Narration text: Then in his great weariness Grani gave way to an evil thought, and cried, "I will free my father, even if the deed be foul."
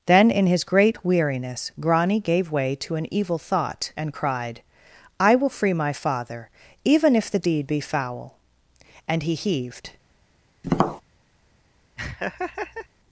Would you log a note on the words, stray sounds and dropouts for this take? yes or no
yes